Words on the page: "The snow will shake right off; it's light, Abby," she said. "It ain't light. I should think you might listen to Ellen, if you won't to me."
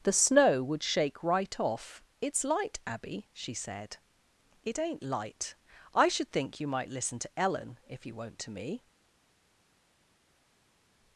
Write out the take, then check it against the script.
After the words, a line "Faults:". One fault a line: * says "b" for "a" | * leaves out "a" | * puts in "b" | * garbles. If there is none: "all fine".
"The snow would shake right off; it's light, Abby," she said. "It ain't light. I should think you might listen to Ellen, if you won't to me."
Faults:
* says "would" for "will"